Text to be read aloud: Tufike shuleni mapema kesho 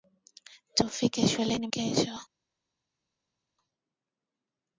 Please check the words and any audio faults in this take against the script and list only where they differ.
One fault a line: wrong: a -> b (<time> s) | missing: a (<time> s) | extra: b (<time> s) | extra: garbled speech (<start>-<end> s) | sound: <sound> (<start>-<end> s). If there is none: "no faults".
missing: mapema (1.7 s)